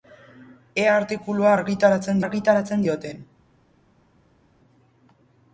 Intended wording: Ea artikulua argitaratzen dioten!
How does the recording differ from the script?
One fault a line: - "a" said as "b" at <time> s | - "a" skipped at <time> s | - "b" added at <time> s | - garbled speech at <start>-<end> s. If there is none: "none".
- "argitaratzen" added at 2.2 s